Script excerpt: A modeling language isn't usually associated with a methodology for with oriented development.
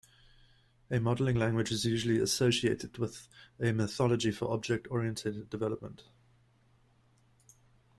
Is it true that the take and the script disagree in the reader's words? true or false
true